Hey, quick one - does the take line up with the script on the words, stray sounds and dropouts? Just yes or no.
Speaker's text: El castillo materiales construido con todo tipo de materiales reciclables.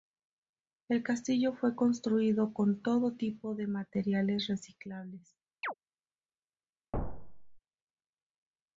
no